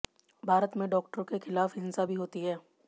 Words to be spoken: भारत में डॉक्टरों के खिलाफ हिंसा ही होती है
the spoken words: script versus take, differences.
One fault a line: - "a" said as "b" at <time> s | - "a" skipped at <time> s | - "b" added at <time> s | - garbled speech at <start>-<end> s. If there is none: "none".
- "ही" said as "भी" at 2.0 s